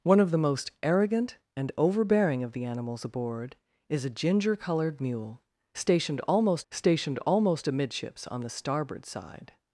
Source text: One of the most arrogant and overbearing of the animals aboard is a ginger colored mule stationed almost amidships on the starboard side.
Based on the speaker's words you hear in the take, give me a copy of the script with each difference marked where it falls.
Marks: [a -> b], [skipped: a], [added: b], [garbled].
One of the most arrogant and overbearing of the animals aboard is a ginger colored mule stationed almost [added: stationed almost] amidships on the starboard side.